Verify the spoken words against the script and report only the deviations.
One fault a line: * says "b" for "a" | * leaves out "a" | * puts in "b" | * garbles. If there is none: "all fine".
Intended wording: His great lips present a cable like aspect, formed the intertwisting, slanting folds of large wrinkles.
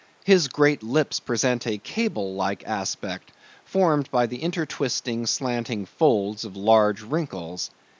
* puts in "by"